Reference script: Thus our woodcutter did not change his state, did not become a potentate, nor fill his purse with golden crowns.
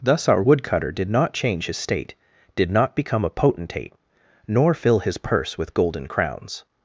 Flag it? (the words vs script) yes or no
no